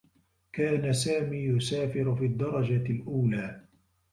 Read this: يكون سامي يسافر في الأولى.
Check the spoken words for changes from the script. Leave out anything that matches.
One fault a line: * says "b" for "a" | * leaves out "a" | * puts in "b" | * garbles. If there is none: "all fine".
* says "كان" for "يكون"
* puts in "الدّرجة"